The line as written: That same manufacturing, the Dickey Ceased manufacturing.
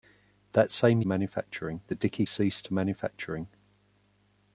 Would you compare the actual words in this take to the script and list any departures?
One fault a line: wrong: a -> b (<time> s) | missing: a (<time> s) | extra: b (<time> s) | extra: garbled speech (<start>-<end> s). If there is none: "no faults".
no faults